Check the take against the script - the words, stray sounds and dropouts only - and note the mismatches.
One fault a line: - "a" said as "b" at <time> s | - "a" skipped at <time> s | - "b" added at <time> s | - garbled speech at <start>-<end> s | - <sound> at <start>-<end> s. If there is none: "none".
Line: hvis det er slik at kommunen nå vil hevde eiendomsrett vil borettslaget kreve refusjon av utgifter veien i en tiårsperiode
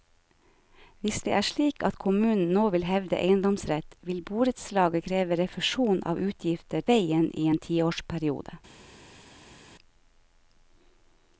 none